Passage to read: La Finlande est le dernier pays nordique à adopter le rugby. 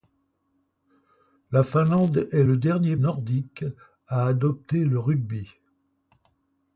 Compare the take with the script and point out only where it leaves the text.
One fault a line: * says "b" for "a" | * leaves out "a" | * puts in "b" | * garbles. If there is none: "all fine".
* leaves out "pays"